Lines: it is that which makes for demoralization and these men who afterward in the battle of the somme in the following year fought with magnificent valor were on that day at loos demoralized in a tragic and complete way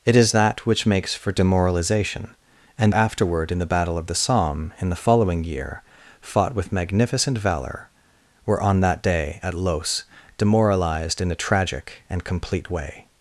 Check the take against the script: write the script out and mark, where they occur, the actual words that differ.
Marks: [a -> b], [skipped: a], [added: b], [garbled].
it is that which makes for demoralization and [skipped: these men who] afterward in the battle of the somme in the following year fought with magnificent valor were on that day at loos demoralized in a tragic and complete way